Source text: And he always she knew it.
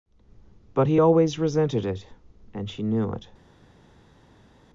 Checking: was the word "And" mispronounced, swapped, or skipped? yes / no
yes